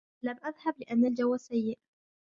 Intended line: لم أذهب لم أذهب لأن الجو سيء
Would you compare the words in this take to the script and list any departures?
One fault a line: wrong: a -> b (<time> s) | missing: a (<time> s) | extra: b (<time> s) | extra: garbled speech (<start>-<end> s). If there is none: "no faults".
missing: لم أذهب (0.8 s)